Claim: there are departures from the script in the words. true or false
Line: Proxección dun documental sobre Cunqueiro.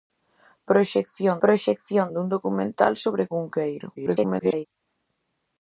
true